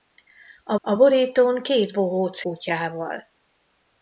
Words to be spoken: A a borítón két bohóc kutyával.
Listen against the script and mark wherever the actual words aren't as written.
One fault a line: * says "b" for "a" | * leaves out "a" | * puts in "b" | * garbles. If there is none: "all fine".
all fine